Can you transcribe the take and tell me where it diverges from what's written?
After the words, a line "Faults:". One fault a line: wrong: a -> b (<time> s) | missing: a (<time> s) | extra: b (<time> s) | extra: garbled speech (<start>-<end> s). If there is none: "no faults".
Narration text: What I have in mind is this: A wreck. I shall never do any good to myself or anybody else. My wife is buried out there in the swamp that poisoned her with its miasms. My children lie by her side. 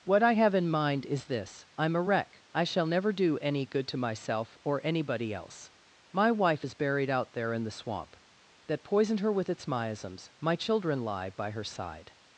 What I have in mind is this: I'm a wreck. I shall never do any good to myself or anybody else. My wife is buried out there in the swamp that poisoned her with its miasms. My children lie by her side.
Faults:
extra: I'm (1.8 s)